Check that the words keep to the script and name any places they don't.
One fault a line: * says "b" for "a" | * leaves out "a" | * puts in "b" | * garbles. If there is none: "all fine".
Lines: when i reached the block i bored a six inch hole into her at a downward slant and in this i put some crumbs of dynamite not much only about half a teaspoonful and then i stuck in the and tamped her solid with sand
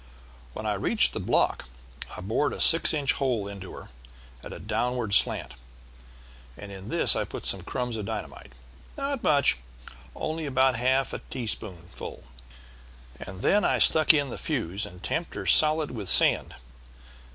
* puts in "fuse"